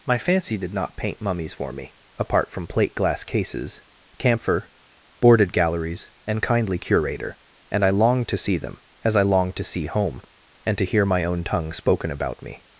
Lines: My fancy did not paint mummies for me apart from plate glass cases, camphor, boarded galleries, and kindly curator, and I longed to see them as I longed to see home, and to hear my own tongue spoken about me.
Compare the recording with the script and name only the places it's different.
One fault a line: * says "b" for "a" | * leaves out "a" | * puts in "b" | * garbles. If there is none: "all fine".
all fine